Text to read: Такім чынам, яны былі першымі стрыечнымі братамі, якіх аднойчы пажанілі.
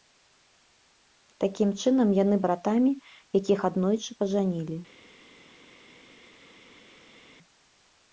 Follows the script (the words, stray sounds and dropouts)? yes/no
no